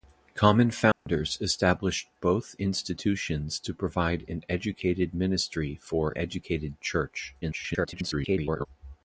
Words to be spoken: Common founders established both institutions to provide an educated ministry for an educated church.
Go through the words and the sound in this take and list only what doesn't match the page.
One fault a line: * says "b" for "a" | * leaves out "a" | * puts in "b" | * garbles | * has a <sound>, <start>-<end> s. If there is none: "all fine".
* has a dropout, 0.9-1.1 s
* leaves out "an"
* garbles